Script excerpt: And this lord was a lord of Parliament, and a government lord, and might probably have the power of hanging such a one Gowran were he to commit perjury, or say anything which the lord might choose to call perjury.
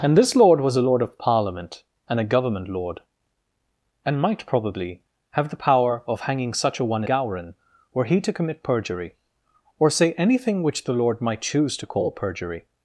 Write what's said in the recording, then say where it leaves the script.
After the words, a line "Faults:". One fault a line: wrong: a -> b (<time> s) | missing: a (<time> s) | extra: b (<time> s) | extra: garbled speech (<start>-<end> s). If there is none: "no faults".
And this lord was a lord of Parliament, and a government lord, and might probably have the power of hanging such a one Gowran were he to commit perjury, or say anything which the lord might choose to call perjury.
Faults:
no faults